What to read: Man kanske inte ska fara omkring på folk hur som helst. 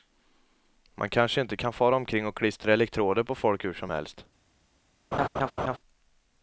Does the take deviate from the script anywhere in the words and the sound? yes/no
yes